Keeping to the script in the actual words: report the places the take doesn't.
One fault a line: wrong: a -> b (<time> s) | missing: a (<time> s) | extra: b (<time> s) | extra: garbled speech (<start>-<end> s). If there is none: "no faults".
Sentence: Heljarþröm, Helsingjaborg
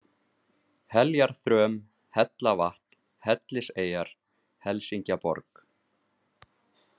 extra: Hellavatn Helliseyjar (2.2 s)